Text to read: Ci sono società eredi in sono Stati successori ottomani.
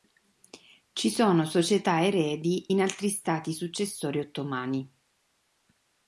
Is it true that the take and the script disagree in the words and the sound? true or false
true